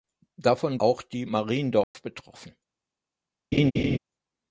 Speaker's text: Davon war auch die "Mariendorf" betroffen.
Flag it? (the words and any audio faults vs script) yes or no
yes